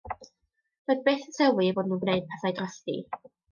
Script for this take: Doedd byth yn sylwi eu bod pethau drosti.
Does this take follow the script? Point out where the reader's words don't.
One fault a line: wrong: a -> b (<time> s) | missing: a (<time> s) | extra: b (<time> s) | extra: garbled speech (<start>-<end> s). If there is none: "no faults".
extra: nhw'n gwneud (1.9 s)